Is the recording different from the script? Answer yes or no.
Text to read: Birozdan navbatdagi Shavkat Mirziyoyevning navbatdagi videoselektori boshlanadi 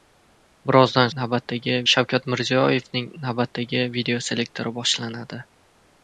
no